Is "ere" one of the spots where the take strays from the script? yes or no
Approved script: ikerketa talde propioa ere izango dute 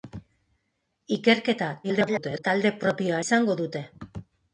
yes